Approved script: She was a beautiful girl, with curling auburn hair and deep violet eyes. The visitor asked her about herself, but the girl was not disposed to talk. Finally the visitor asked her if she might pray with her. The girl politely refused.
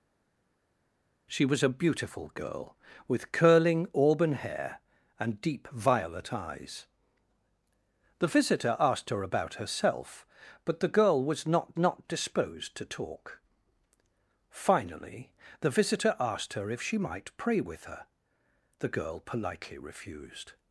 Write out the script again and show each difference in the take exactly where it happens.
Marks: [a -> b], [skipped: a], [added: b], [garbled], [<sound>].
She was a beautiful girl, with curling auburn hair and deep violet eyes. The visitor asked her about herself, but the girl was not [added: not] disposed to talk. Finally the visitor asked her if she might pray with her. The girl politely refused.